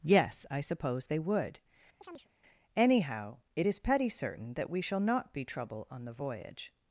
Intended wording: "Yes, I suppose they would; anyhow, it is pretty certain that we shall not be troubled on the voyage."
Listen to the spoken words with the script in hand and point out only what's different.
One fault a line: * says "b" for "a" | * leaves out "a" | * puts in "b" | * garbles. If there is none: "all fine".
* says "petty" for "pretty"
* says "trouble" for "troubled"